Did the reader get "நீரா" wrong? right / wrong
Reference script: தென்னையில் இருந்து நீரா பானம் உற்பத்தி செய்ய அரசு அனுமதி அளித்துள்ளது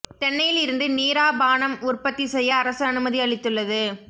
right